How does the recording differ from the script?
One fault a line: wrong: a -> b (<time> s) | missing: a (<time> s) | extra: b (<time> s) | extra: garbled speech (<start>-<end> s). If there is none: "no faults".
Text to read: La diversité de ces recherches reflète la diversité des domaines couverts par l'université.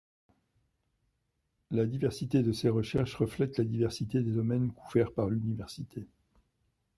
no faults